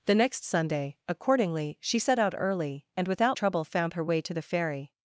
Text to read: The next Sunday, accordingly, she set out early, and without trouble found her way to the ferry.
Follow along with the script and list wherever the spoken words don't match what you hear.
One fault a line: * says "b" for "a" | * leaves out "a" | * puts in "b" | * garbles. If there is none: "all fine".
all fine